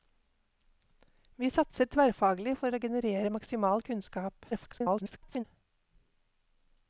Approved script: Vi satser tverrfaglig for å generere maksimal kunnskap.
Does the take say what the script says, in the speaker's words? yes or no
no